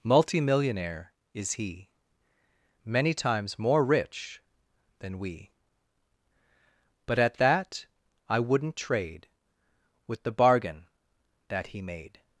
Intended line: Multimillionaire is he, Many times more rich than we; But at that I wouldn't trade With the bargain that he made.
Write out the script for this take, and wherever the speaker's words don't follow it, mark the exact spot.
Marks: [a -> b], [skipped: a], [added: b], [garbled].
Multimillionaire is he, Many times more rich than we; But at that I wouldn't trade With the bargain that he made.